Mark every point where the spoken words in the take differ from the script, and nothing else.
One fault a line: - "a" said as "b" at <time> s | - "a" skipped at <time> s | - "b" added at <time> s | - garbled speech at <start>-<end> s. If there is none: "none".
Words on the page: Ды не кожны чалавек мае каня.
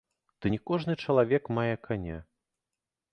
none